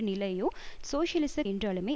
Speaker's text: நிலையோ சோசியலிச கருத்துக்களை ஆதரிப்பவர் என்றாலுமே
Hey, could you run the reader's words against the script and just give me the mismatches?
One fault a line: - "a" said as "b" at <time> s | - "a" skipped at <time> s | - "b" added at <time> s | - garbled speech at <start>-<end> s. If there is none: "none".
- "கருத்துக்களை ஆதரிப்பவர்" skipped at 1.4 s